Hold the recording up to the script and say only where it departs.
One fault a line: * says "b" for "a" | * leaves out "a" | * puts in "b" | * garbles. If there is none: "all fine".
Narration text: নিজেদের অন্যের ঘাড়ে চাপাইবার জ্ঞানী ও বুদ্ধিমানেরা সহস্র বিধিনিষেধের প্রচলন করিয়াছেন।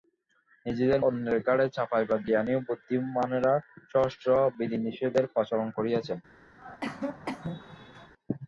all fine